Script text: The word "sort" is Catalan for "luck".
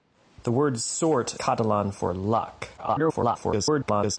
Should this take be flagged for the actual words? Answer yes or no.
yes